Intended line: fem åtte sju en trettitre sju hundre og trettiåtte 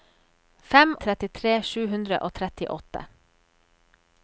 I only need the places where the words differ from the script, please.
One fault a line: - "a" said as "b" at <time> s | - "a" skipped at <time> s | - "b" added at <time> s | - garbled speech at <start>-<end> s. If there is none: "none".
- "åtte sju en" skipped at 0.9 s